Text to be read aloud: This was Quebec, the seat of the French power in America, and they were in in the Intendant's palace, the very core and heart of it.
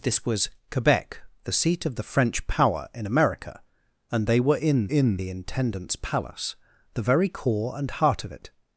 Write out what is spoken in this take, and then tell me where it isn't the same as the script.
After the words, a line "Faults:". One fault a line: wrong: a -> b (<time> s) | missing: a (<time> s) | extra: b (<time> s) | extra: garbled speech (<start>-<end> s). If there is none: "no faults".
This was Quebec, the seat of the French power in America, and they were in in the Intendant's palace, the very core and heart of it.
Faults:
no faults